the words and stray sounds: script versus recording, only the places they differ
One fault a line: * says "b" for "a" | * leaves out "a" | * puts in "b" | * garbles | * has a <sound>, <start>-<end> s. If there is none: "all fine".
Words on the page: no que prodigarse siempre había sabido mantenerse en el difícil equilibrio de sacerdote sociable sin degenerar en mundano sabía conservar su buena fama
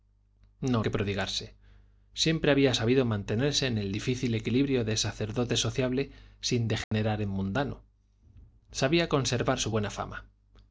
* has a dropout, 6.8-6.9 s